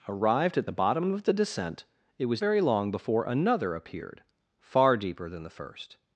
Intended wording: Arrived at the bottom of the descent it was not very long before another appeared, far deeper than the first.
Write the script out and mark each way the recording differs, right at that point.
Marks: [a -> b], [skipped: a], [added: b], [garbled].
Arrived at the bottom of the descent it was [skipped: not] very long before another appeared, far deeper than the first.